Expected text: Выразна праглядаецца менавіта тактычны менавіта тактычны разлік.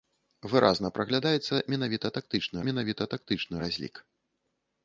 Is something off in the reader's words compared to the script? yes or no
no